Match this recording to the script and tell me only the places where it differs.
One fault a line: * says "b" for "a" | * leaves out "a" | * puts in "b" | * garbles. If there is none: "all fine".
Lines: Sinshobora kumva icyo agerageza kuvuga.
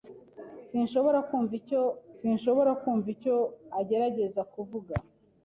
* puts in "sinshobora kumva icyo"